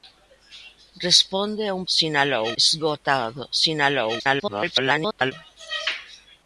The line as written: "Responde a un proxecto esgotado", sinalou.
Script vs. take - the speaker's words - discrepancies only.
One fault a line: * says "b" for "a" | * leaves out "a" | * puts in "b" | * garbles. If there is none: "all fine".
* says "sinalou" for "proxecto"
* garbles